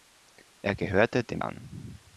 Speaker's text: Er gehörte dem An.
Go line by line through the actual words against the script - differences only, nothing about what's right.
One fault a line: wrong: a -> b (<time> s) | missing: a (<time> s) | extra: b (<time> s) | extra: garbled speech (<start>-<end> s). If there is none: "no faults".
no faults